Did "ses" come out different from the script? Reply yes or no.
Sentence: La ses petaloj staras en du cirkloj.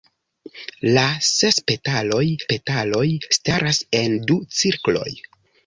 no